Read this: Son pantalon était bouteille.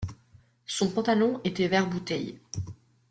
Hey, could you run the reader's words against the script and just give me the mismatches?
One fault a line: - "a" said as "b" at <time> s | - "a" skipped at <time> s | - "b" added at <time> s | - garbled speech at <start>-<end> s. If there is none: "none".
- "vert" added at 1.6 s